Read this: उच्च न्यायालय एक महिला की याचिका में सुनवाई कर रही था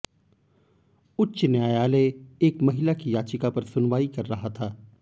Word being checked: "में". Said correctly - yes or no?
no